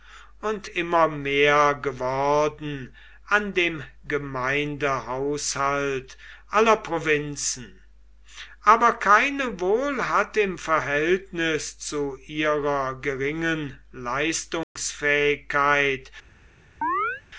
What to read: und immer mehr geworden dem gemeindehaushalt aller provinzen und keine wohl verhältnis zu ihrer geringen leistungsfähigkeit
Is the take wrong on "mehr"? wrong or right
right